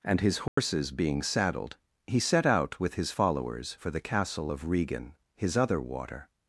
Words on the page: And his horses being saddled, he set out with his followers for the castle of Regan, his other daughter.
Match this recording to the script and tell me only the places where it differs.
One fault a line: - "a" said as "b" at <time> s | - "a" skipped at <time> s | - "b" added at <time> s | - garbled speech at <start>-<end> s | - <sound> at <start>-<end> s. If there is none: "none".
- dropout at 0.5-0.6 s
- "daughter" said as "water" at 5.8 s